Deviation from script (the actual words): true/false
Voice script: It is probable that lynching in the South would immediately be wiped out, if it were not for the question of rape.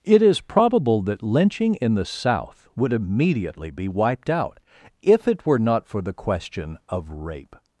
false